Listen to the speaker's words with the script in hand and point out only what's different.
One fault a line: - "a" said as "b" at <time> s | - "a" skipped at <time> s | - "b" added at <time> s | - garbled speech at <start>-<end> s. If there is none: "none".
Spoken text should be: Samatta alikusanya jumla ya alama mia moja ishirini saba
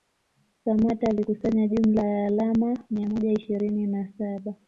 - "na" added at 3.9 s